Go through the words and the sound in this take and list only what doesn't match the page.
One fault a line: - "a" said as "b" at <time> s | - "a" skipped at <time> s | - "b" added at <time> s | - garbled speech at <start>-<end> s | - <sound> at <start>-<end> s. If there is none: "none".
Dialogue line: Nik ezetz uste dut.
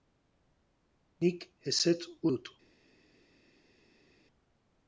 - "uste" skipped at 2.0 s